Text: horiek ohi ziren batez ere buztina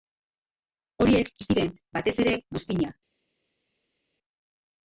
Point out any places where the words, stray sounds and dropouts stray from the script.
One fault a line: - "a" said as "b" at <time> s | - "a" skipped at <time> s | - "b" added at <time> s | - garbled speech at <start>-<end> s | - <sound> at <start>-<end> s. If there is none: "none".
none